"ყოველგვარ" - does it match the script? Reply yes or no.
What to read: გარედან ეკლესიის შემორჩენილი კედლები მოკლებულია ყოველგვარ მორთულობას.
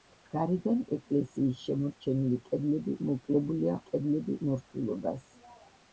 no